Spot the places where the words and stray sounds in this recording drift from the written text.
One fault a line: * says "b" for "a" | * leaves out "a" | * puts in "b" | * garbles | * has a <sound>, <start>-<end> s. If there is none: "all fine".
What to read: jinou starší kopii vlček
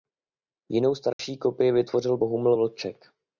* has a dropout, 1.1-1.2 s
* puts in "vytvořil bohumil"